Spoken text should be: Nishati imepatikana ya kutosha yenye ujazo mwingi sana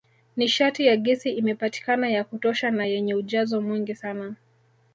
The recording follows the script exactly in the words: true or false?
false